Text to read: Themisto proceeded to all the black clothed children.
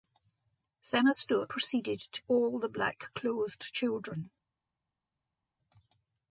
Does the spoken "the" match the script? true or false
true